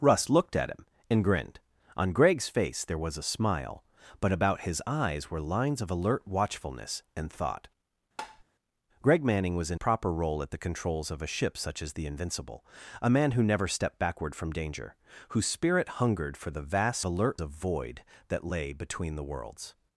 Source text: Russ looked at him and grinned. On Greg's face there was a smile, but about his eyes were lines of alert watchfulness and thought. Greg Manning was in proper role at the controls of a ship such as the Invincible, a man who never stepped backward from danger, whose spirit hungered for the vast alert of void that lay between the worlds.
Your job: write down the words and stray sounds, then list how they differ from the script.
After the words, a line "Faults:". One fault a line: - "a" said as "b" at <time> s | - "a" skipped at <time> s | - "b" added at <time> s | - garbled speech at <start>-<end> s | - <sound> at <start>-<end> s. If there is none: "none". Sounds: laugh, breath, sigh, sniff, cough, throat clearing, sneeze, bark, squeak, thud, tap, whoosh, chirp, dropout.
Russ looked at him and grinned. On Greg's face there was a smile, but about his eyes were lines of alert watchfulness and thought. Greg Manning was in proper role at the controls of a ship such as the Invincible, a man who never stepped backward from danger, whose spirit hungered for the vast alert of void that lay between the worlds.
Faults:
- tap at 8.2-8.4 s